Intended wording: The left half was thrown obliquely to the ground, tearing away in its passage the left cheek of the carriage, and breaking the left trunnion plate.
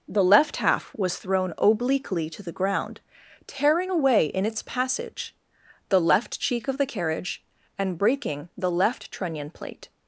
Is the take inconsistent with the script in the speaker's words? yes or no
no